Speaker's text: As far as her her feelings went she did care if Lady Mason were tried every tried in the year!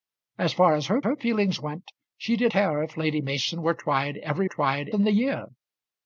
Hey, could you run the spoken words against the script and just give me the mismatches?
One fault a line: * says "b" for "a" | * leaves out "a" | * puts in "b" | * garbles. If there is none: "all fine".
all fine